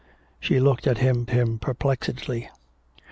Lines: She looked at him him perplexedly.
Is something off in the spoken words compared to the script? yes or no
no